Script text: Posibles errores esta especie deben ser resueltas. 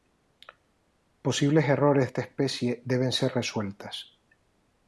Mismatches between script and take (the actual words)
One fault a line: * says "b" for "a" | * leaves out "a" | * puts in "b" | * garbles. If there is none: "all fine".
all fine